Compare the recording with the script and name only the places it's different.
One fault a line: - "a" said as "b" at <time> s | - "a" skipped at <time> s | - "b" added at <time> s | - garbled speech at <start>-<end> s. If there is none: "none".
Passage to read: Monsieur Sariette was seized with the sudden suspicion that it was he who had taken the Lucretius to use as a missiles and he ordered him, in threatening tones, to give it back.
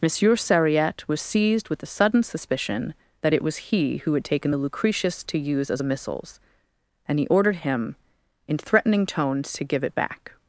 none